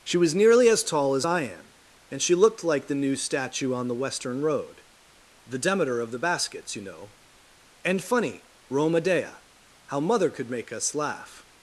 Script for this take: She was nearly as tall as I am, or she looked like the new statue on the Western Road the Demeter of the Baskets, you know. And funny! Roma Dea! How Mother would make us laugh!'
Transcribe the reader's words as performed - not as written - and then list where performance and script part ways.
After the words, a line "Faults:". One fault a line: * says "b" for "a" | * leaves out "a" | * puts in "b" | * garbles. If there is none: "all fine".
She was nearly as tall as I am, and she looked like the new statue on the Western Road the Demeter of the Baskets, you know. And funny! Roma Dea! How Mother could make us laugh!'
Faults:
* says "and" for "or"
* says "could" for "would"